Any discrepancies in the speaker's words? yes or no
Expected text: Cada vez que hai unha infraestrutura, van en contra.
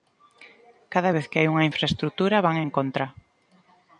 no